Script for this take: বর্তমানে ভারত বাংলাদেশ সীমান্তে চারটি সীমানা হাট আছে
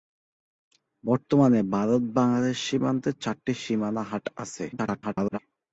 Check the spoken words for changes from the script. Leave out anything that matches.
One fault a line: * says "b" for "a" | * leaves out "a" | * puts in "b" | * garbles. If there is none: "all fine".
* garbles